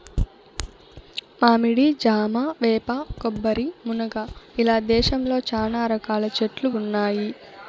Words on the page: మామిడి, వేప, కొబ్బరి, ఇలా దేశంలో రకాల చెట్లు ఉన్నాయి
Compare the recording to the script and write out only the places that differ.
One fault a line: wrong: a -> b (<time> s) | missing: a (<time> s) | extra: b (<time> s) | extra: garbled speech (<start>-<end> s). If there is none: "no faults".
extra: జామ (2.0 s)
extra: మునగ (3.9 s)
extra: చానా (5.5 s)